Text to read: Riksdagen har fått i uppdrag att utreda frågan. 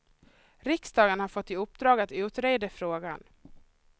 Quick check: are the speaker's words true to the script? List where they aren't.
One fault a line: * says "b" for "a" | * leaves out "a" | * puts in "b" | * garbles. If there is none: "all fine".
all fine